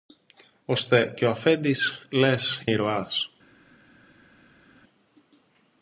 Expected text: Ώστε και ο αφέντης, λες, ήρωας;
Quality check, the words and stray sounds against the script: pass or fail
pass